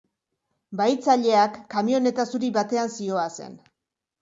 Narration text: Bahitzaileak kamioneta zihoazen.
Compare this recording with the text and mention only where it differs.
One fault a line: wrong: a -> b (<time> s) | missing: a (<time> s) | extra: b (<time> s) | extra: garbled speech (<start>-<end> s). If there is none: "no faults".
extra: zuri batean (2.3 s)